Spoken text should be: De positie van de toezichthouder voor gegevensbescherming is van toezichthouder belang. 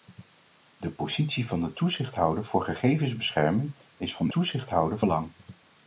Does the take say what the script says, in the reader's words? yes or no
yes